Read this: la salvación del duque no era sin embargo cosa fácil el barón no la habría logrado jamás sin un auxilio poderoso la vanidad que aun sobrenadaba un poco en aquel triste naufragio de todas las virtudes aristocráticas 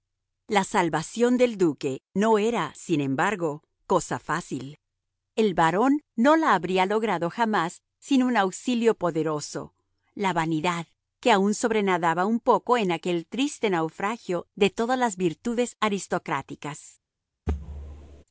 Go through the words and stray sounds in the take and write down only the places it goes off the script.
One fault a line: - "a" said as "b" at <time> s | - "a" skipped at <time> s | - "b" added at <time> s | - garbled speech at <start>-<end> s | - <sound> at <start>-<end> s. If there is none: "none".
- thud at 17.5-18.2 s